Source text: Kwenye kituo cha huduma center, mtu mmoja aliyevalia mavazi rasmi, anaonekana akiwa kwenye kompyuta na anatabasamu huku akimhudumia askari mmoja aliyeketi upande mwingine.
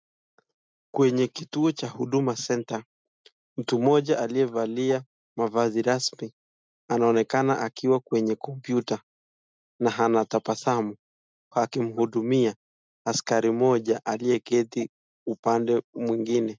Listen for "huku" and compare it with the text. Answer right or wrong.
wrong